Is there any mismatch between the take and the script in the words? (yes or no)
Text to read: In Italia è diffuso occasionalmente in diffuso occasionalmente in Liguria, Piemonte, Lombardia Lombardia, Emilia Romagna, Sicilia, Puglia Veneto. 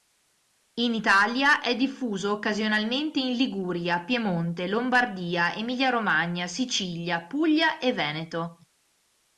yes